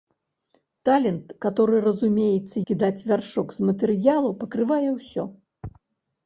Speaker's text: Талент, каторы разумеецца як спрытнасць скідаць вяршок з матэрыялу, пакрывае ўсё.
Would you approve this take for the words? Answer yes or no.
no